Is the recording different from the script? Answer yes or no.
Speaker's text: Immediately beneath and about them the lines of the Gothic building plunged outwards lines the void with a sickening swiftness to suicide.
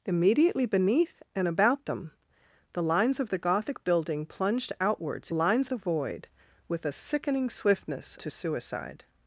no